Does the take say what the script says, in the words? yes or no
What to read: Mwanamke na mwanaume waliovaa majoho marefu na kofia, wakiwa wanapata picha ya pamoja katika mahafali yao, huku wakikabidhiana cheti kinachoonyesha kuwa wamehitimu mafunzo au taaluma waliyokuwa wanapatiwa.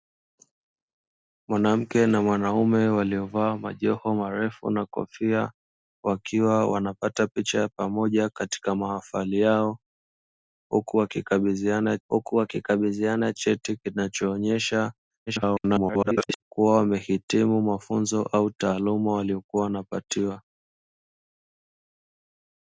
no